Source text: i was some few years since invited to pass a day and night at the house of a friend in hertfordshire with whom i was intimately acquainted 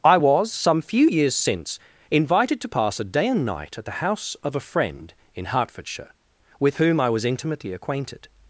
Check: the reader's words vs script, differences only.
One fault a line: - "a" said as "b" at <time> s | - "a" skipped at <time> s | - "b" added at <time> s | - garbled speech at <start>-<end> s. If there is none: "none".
none